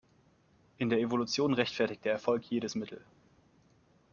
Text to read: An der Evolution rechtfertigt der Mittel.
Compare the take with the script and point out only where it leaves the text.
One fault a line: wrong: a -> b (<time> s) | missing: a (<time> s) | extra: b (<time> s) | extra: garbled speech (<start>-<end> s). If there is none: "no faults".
wrong: An -> In (0.8 s)
extra: Erfolg jedes (2.1 s)